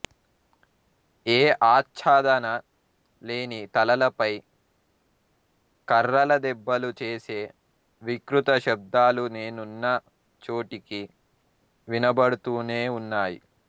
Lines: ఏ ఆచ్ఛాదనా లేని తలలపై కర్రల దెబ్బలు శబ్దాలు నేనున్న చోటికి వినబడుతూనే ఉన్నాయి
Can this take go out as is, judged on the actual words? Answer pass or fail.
fail